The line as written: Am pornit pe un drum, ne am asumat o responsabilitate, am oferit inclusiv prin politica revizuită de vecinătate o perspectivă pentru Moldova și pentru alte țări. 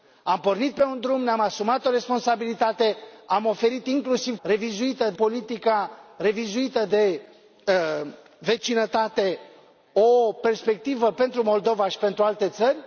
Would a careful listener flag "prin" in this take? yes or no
yes